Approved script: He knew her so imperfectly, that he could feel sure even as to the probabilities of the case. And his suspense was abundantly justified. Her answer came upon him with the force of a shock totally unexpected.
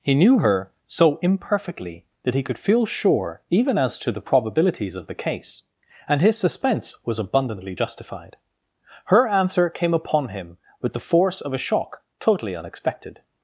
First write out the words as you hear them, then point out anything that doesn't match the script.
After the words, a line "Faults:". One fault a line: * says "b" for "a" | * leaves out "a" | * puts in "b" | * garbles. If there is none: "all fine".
He knew her so imperfectly, that he could feel sure even as to the probabilities of the case. And his suspense was abundantly justified. Her answer came upon him with the force of a shock totally unexpected.
Faults:
all fine